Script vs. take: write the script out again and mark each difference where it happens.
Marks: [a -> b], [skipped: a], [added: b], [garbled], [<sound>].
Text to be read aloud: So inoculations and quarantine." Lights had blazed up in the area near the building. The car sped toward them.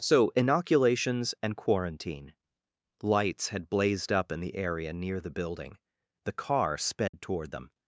So inoculations and quarantine." Lights had blazed up in the area near the building. The car sped [dropout] toward them.